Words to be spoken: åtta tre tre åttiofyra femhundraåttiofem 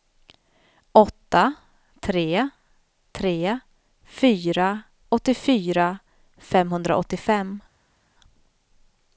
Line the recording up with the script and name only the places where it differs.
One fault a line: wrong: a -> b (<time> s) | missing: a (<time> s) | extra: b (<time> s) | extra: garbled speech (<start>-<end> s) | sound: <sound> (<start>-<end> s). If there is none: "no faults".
extra: fyra (4.0 s)